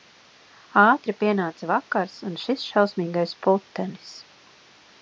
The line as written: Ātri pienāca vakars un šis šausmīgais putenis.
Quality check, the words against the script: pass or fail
pass